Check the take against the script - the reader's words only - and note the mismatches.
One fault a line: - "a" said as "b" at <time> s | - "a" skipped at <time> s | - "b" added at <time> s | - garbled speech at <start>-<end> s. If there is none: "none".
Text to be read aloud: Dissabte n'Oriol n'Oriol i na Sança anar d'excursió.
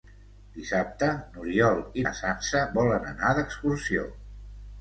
- "n'Oriol" skipped at 1.8 s
- "volen" added at 2.8 s